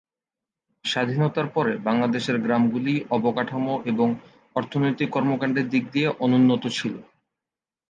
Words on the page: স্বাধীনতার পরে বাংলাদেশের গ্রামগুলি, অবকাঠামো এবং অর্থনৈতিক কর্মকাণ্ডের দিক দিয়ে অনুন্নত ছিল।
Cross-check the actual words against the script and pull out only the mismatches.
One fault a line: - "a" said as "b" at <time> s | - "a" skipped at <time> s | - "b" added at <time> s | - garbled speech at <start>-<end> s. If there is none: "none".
none